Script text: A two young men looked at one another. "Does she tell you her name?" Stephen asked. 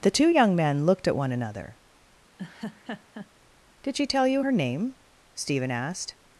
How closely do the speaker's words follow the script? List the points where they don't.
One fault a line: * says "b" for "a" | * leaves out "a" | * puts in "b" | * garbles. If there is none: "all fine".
* says "The" for "A"
* says "Did" for "Does"